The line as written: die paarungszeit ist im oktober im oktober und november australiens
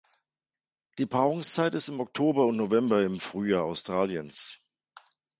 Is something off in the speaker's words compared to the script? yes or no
yes